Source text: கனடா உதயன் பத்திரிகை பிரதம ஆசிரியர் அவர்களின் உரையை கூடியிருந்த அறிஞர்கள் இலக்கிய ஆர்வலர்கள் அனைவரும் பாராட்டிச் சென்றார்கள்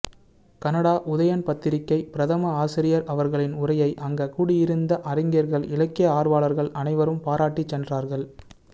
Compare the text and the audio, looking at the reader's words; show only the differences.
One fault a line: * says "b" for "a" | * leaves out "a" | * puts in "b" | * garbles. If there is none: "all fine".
* puts in "அங்க"